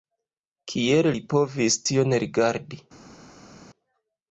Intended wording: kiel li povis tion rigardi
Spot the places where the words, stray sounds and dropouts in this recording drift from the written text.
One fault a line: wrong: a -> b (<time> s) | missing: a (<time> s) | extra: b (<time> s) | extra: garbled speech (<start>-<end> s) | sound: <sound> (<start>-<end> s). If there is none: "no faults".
no faults